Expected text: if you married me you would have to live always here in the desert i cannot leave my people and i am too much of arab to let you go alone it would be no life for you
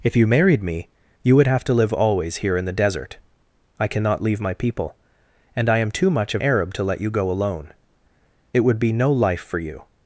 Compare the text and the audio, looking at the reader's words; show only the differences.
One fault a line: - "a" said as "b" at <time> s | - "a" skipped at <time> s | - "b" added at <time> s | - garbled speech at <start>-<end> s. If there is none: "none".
none